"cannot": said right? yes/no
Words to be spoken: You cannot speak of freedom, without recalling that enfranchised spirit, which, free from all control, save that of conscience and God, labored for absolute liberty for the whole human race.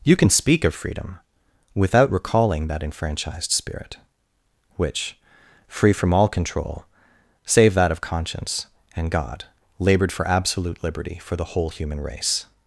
no